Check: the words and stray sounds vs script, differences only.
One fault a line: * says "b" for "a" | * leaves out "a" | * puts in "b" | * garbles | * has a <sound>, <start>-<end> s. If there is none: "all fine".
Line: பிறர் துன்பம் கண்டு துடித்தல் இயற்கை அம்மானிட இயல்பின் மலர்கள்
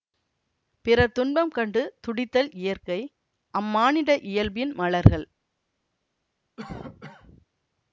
* has a cough, 6.6-7.5 s